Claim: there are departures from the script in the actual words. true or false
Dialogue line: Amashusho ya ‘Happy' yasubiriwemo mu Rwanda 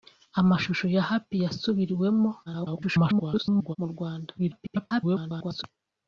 true